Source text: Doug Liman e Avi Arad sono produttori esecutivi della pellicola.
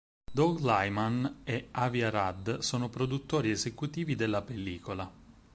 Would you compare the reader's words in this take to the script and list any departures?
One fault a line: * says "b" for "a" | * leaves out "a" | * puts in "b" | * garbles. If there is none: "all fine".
all fine